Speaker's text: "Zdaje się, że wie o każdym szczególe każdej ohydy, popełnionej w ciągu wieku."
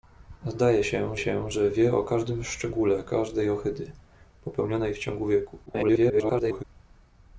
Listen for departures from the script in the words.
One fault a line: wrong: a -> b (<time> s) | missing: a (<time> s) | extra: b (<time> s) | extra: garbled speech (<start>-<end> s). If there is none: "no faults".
extra: się (1.2 s)
extra: garbled speech (5.7-6.6 s)